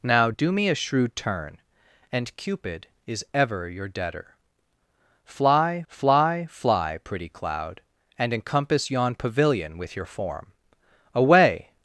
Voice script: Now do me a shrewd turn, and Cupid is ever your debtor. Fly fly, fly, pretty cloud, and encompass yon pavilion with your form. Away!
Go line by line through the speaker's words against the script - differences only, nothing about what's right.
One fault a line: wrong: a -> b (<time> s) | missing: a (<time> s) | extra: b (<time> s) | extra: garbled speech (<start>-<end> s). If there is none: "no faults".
no faults